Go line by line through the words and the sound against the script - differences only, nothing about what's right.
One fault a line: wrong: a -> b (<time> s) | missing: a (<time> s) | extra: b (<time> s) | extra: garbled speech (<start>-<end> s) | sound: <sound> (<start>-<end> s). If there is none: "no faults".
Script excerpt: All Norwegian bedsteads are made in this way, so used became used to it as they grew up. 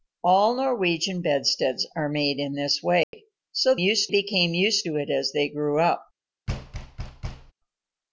sound: dropout (3.0-3.1 s)
sound: thud (6.5-7.5 s)